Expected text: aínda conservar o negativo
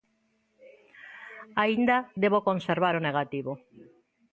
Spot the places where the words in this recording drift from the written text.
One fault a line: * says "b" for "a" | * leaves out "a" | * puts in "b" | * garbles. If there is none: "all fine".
* puts in "debo"